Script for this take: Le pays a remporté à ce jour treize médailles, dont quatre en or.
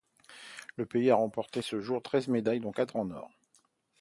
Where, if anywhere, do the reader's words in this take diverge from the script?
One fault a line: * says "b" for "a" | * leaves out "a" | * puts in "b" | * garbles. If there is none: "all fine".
all fine